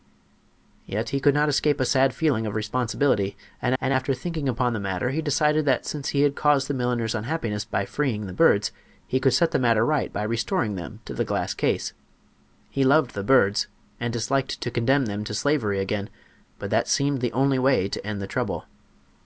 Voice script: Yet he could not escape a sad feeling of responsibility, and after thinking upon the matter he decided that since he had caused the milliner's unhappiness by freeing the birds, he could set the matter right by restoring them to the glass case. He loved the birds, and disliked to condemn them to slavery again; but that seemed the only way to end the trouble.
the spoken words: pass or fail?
fail